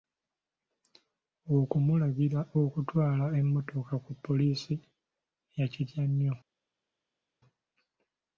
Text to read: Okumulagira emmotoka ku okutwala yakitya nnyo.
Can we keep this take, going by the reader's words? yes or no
no